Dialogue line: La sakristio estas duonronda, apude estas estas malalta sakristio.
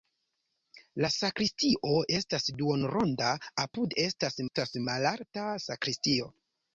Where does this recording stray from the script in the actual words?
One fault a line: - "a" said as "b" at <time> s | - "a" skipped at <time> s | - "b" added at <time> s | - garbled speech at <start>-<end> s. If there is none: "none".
none